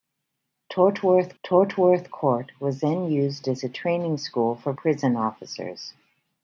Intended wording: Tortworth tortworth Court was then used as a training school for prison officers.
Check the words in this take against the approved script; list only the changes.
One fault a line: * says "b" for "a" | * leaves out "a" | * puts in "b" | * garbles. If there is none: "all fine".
all fine